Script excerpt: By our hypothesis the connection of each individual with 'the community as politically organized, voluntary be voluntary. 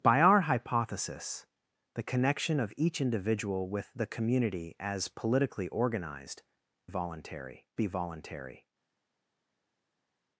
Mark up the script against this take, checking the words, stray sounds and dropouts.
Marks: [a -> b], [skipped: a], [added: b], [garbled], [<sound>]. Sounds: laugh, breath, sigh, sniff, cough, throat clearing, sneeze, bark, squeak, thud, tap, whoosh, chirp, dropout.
By our hypothesis the connection of each individual with 'the community as politically organized, voluntary be voluntary.